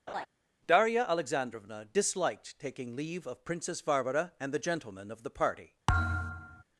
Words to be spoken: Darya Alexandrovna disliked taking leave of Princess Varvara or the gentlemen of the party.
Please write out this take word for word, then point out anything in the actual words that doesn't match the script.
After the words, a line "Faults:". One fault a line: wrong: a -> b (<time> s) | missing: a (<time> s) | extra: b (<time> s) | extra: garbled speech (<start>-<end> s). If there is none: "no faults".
Darya Alexandrovna disliked taking leave of Princess Varvara and the gentlemen of the party.
Faults:
wrong: or -> and (4.4 s)